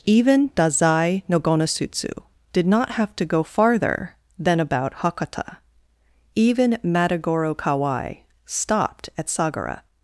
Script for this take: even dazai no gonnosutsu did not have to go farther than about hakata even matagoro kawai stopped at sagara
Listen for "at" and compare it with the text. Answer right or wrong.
right